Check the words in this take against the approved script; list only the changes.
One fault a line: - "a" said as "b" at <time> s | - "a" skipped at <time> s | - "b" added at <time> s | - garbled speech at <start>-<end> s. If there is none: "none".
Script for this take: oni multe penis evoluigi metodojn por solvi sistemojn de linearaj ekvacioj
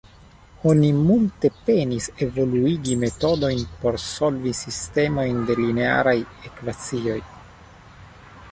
none